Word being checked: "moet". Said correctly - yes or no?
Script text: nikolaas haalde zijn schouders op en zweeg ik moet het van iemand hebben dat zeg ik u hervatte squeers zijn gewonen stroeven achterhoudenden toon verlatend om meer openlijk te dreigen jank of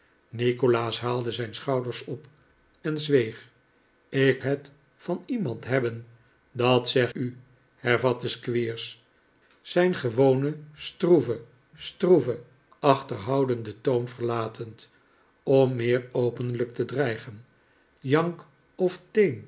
no